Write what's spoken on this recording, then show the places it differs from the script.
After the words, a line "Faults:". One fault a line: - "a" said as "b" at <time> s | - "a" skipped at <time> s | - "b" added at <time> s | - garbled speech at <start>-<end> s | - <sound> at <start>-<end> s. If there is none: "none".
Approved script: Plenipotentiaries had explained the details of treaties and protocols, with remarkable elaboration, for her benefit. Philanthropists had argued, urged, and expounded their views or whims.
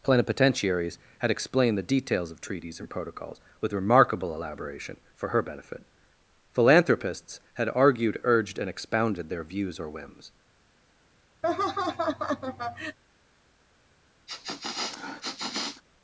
Plenipotentiaries had explained the details of treaties and protocols, with remarkable elaboration, for her benefit. Philanthropists had argued, urged, and expounded their views or whims.
Faults:
- laugh at 11.4-13.0 s
- sniff at 14.3-15.8 s